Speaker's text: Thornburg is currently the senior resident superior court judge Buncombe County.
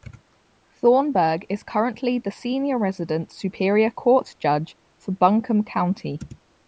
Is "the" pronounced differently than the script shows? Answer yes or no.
no